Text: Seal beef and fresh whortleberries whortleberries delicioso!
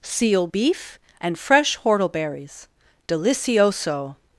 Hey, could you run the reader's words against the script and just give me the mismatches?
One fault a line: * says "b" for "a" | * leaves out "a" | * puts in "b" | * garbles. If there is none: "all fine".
* leaves out "whortleberries"